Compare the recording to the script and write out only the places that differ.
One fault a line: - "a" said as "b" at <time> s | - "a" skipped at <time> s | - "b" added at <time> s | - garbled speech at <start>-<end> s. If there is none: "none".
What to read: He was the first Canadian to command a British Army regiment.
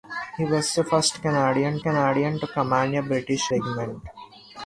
- "Canadian" added at 1.8 s
- "Army" skipped at 3.5 s